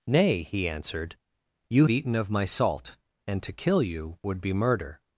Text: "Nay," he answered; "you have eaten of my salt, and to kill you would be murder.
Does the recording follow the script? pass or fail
fail